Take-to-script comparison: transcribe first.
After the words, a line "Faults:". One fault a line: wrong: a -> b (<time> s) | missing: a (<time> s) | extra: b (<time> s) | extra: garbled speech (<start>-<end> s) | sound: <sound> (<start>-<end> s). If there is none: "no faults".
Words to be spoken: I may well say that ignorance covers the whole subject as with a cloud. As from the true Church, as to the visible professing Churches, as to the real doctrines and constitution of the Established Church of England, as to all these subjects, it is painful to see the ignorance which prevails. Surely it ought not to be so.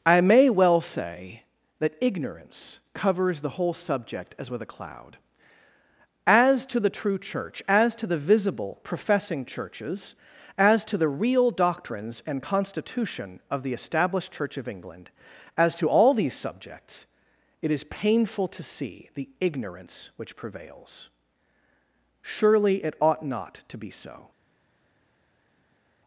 I may well say that ignorance covers the whole subject as with a cloud. As to the true Church, as to the visible professing Churches, as to the real doctrines and constitution of the Established Church of England, as to all these subjects, it is painful to see the ignorance which prevails. Surely it ought not to be so.
Faults:
wrong: from -> to (6.7 s)